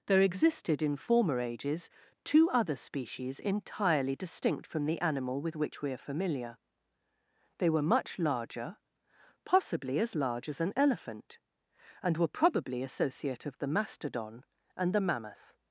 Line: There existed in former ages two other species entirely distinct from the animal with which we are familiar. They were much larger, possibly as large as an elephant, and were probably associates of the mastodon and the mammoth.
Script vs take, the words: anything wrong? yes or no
yes